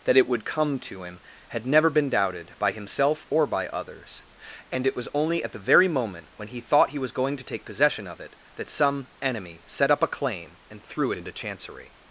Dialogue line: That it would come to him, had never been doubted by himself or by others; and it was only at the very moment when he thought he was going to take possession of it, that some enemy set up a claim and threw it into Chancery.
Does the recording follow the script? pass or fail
fail